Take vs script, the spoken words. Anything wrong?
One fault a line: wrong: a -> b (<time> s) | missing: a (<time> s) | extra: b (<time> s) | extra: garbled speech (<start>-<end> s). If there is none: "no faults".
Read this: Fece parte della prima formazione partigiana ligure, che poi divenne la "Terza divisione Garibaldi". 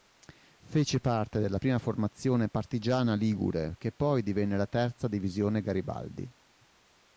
no faults